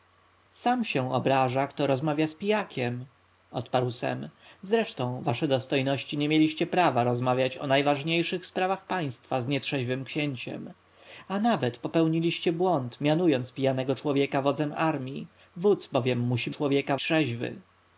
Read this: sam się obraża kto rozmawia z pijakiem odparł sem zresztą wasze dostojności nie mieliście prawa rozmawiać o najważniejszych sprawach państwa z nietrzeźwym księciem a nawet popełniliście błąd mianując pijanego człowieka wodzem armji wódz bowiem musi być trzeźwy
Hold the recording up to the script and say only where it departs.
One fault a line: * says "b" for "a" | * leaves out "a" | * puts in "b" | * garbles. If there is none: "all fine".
* says "człowieka" for "być"